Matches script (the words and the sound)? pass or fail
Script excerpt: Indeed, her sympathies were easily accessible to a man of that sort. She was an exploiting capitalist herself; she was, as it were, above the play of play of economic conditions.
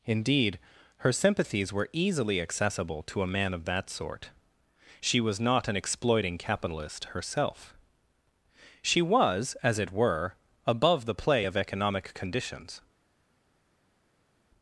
fail